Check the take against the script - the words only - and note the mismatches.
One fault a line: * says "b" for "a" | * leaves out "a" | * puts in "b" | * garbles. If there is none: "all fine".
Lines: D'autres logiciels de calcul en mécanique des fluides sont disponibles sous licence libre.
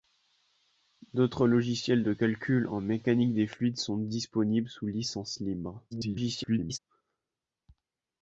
* garbles